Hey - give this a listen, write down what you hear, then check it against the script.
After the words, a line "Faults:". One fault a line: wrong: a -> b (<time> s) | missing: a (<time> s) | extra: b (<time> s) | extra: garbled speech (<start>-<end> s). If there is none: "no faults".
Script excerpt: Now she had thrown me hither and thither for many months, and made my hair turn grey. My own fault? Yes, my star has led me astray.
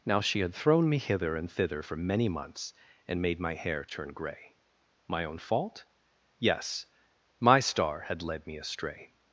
Now she had thrown me hither and thither for many months, and made my hair turn grey. My own fault? Yes, my star had led me astray.
Faults:
wrong: has -> had (8.0 s)